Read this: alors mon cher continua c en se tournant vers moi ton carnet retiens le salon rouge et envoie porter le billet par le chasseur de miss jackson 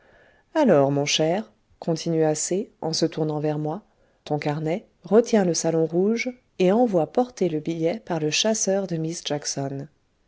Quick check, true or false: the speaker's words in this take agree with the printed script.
true